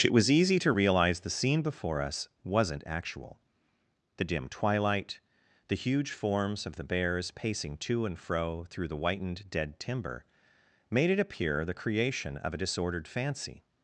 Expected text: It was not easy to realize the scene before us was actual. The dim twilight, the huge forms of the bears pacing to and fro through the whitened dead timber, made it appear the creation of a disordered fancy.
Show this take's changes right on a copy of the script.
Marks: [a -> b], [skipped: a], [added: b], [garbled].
It was [skipped: not] easy to realize the scene before us [was -> wasn't] actual. The dim twilight, the huge forms of the bears pacing to and fro through the whitened dead timber, made it appear the creation of a disordered fancy.